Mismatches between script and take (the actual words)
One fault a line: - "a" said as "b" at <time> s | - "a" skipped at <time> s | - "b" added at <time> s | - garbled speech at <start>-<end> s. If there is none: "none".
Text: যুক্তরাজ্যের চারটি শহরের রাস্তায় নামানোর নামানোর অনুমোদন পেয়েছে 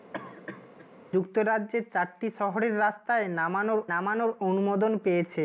none